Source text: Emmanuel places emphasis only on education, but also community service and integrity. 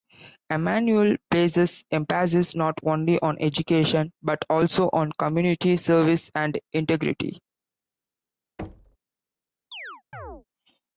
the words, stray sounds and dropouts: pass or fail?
fail